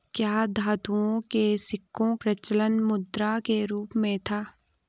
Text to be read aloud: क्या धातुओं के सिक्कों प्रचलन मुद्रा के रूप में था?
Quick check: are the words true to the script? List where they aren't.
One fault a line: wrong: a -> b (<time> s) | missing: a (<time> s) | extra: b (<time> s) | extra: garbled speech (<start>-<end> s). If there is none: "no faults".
no faults